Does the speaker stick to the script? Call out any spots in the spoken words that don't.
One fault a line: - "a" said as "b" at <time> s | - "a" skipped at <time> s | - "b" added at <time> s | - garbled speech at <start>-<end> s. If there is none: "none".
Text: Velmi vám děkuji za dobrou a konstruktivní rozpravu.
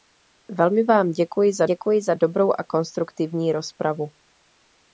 - "děkuji za" added at 1.6 s